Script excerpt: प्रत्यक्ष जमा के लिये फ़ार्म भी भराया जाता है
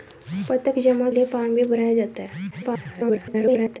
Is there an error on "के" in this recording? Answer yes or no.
yes